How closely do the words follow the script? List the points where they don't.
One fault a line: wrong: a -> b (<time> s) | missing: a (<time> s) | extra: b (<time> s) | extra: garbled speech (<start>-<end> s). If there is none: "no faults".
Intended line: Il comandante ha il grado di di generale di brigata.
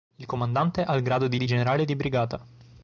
no faults